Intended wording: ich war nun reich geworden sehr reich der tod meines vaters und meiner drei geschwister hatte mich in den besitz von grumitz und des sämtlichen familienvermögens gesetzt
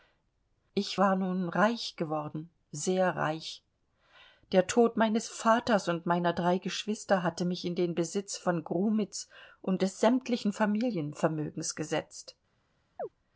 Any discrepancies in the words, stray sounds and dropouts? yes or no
yes